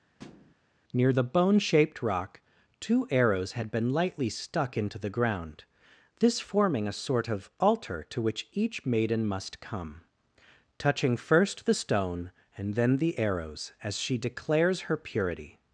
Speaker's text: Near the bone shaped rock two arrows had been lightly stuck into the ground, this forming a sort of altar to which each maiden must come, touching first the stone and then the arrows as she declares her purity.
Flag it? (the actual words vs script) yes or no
no